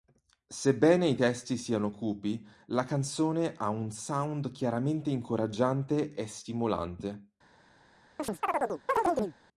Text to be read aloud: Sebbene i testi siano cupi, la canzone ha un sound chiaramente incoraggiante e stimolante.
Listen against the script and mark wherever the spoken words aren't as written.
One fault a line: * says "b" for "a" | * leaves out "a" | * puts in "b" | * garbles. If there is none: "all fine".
all fine